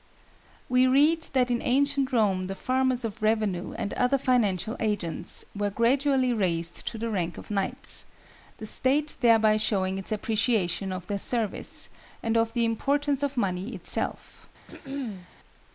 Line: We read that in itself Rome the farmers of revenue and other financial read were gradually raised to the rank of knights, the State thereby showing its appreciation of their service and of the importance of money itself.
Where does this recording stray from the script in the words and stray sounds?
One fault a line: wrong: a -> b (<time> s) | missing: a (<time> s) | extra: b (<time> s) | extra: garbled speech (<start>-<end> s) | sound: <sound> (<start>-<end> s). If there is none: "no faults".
wrong: itself -> ancient (1.6 s)
wrong: read -> agents (4.8 s)
sound: throat clearing (14.7-15.3 s)